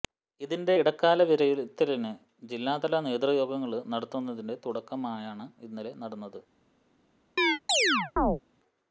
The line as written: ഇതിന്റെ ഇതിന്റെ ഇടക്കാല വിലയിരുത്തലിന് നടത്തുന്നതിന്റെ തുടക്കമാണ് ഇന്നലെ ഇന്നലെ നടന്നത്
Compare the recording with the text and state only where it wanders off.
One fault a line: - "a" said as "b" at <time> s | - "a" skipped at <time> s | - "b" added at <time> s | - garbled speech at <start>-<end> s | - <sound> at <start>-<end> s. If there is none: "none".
- "ഇതിന്റെ" skipped at 0.8 s
- "ജില്ലാതല നേതൃയോഗങ്ങള്" added at 2.4 s
- "ഇന്നലെ" skipped at 5.9 s
- chirp at 7.4-8.4 s